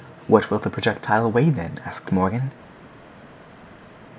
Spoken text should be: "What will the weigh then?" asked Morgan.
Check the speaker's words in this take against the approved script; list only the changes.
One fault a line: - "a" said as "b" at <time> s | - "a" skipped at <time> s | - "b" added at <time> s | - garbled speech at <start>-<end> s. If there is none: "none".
- "projectile" added at 0.7 s